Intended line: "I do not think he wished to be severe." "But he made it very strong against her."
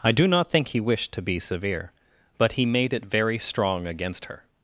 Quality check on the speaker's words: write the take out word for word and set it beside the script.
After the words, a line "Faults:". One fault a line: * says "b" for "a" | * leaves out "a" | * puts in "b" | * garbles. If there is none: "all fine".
"I do not think he wished to be severe." "But he made it very strong against her."
Faults:
all fine